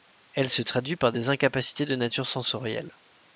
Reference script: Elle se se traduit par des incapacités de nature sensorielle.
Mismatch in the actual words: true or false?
true